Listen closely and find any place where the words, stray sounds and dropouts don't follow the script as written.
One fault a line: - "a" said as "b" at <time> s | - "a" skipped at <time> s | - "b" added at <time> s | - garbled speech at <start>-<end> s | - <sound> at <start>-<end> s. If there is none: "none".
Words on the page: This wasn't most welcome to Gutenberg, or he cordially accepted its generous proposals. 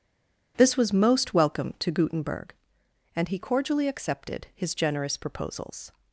- "wasn't" said as "was" at 0.8 s
- "or" said as "and" at 3.1 s
- "its" said as "his" at 4.5 s